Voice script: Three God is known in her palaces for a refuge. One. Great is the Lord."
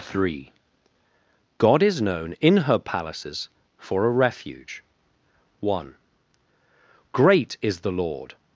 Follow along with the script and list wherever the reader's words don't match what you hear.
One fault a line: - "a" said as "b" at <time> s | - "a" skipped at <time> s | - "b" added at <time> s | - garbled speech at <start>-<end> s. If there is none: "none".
none